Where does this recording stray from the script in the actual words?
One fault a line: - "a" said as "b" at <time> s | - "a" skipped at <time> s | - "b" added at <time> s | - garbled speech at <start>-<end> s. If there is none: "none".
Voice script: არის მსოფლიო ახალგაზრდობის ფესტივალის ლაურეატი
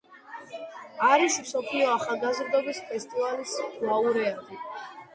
none